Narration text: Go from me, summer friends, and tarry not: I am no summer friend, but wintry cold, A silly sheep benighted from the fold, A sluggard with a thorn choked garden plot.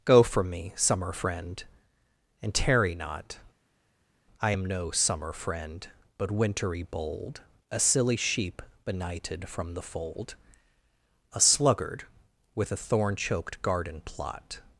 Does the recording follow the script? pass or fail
fail